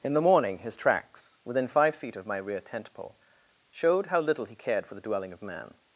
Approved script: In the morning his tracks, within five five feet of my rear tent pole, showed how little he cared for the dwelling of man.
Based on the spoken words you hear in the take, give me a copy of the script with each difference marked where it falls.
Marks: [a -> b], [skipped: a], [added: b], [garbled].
In the morning his tracks, within five [skipped: five] feet of my rear tent pole, showed how little he cared for the dwelling of man.